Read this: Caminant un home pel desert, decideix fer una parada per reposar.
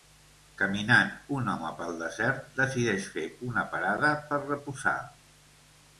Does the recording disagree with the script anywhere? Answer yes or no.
no